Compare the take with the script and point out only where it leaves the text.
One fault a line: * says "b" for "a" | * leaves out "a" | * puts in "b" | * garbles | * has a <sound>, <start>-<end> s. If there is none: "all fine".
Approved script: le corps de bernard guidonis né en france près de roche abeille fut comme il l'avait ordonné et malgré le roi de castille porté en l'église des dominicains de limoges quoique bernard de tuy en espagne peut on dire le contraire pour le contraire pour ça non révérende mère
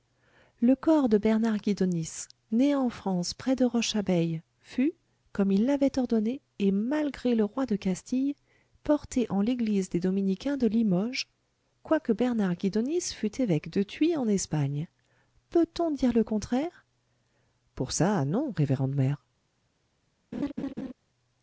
* puts in "guidonis fût évêque"
* leaves out "le contraire pour"
* has a laugh, 20.3-20.9 s